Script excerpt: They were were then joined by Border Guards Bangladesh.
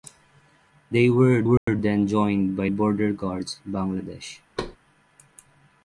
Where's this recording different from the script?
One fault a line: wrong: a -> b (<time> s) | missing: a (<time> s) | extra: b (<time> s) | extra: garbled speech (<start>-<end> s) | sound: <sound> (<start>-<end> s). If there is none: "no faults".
sound: dropout (1.6-1.7 s)
sound: thud (4.6-4.8 s)